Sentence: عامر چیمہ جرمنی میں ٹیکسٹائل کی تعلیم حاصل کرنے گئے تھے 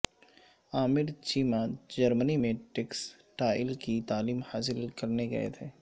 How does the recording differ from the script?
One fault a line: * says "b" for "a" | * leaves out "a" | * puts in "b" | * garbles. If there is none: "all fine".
all fine